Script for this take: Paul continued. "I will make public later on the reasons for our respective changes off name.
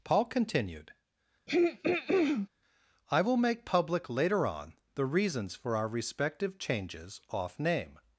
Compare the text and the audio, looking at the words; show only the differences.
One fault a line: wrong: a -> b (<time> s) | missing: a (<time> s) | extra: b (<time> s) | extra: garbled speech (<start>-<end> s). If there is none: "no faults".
no faults